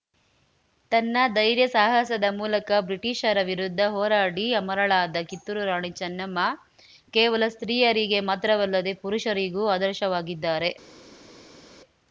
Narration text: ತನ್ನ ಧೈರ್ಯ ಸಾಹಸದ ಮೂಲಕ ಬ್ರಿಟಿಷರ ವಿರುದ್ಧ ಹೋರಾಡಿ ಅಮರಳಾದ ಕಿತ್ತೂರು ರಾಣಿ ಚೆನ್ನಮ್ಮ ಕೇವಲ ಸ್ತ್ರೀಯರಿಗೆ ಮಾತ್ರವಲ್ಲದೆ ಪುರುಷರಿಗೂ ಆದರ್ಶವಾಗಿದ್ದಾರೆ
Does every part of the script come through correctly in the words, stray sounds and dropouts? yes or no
yes